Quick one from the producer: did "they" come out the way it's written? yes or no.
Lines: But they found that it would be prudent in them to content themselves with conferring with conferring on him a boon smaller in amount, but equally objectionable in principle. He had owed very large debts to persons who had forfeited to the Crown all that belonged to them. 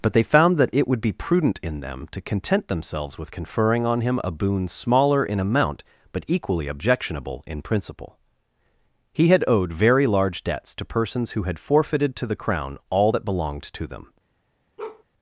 yes